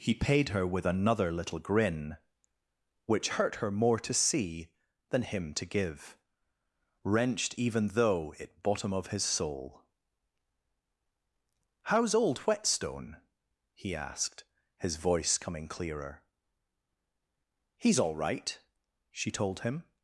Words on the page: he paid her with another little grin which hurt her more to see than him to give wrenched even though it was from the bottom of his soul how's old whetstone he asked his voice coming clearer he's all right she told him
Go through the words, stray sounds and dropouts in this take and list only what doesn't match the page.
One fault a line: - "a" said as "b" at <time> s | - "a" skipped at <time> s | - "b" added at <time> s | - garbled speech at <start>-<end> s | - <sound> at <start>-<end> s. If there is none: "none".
- "was from the" skipped at 8.6 s